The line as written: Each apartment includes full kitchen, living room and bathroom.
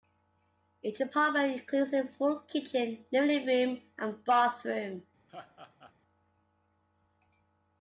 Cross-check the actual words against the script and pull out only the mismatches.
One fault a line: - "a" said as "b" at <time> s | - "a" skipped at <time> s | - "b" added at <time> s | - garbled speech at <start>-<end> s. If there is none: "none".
- "a" added at 1.9 s